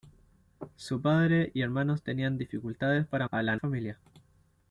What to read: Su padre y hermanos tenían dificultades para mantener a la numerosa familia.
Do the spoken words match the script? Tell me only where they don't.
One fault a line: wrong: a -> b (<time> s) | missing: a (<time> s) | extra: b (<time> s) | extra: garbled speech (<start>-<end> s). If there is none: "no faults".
missing: mantener (3.3 s)
missing: numerosa (3.6 s)